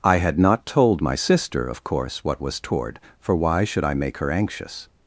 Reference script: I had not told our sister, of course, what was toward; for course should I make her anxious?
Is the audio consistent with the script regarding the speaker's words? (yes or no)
no